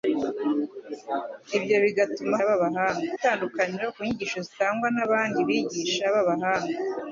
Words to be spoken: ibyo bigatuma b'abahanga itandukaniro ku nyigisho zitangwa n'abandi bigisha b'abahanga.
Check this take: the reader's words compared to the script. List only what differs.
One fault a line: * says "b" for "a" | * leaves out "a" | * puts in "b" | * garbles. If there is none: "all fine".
all fine